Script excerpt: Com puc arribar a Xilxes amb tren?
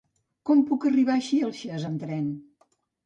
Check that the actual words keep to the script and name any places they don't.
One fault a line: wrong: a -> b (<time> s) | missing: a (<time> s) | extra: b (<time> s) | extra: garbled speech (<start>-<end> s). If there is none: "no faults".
no faults